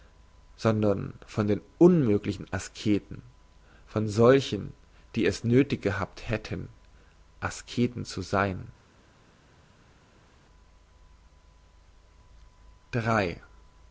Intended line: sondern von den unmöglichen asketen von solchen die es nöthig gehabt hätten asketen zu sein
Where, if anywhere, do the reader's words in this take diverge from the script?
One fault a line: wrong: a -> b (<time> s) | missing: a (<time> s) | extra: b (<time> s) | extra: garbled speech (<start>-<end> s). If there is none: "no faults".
no faults